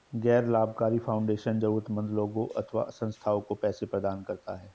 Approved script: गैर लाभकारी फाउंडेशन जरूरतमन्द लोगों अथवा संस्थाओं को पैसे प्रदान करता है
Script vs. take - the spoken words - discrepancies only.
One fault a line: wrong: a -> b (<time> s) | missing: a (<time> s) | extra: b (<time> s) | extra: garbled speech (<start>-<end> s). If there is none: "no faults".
no faults